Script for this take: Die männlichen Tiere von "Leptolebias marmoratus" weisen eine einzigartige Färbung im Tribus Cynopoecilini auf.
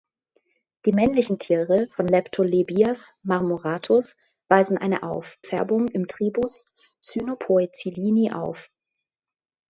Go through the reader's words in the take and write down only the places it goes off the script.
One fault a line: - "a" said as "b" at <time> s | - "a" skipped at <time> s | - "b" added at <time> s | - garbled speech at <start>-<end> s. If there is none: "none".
- "einzigartige" said as "auf" at 5.0 s